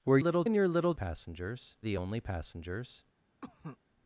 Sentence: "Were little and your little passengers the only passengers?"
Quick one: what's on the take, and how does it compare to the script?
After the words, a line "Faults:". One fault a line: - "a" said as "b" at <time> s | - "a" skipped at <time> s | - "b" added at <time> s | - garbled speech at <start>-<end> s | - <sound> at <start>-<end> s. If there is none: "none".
"Were little and your little passengers the only passengers?"
Faults:
- cough at 3.4-3.8 s